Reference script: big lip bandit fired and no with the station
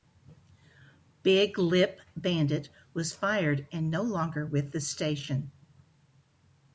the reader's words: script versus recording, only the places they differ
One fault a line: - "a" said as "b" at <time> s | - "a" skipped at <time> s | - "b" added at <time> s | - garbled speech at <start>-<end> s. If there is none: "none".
- "was" added at 2.9 s
- "longer" added at 4.0 s